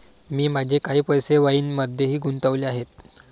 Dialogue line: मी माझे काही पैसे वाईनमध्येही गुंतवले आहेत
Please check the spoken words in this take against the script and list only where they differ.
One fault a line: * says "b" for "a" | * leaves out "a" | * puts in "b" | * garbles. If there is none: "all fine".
all fine